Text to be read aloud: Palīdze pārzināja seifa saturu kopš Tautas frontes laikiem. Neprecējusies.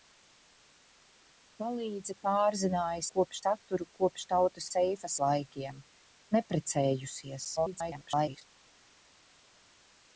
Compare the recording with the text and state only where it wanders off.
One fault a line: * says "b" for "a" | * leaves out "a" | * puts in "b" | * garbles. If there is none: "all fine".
* says "kopš" for "seifa"
* says "seifa" for "frontes"
* garbles